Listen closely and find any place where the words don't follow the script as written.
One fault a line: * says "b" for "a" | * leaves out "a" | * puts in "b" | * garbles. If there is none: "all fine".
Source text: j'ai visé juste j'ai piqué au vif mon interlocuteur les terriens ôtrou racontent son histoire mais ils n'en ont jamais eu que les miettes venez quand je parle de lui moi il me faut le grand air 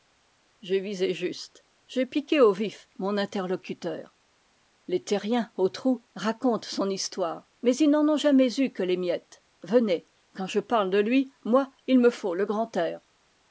all fine